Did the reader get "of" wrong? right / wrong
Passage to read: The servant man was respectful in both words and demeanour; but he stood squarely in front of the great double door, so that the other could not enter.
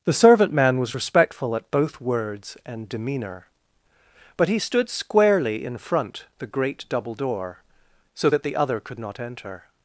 wrong